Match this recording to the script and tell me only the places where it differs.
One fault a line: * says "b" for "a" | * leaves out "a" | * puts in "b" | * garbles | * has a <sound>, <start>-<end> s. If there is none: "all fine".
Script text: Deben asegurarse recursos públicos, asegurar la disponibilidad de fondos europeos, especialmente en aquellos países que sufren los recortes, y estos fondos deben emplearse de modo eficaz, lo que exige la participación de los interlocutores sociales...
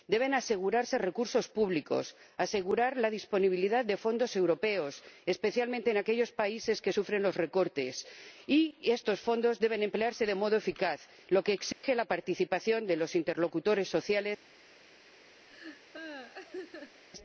* has a dropout, 11.7-11.8 s
* has a laugh, 15.5-17.0 s